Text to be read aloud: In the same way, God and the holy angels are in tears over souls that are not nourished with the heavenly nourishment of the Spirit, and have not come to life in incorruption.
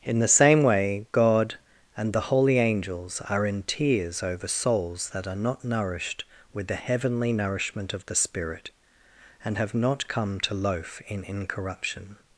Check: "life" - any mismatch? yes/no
yes